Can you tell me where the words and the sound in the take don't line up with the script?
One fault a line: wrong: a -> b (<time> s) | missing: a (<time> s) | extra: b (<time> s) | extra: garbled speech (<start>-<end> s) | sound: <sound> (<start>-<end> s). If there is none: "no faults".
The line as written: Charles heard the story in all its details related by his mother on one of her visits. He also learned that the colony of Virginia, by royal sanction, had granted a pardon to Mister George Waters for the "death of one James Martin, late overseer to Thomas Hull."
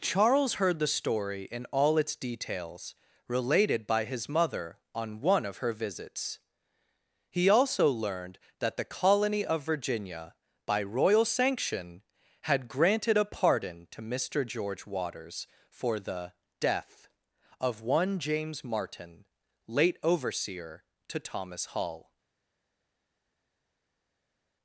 no faults